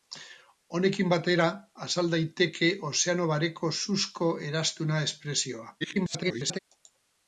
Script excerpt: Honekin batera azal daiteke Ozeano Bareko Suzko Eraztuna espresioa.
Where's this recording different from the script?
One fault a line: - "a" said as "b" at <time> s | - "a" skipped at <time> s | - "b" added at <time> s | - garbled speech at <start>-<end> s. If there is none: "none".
- garbled speech at 5.8-6.6 s